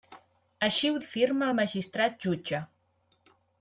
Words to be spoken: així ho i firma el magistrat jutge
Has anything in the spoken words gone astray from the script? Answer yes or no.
no